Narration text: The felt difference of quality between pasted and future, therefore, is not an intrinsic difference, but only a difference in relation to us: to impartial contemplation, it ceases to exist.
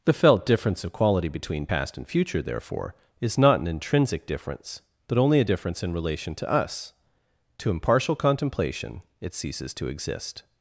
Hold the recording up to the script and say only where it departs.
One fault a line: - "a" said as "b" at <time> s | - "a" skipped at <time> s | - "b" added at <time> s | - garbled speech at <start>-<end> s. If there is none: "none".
- "pasted" said as "past" at 1.6 s